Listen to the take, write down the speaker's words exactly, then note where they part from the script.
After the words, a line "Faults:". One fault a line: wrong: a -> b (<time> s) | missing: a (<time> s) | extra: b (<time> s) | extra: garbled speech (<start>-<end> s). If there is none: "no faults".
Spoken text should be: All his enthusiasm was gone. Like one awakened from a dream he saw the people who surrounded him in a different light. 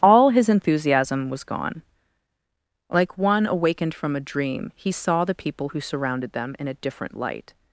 All his enthusiasm was gone. Like one awakened from a dream he saw the people who surrounded them in a different light.
Faults:
wrong: him -> them (6.3 s)